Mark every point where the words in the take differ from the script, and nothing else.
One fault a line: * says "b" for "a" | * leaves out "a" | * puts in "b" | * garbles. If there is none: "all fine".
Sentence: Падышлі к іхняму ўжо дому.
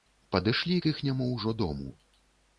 all fine